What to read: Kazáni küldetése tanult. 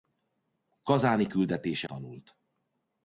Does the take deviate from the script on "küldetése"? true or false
false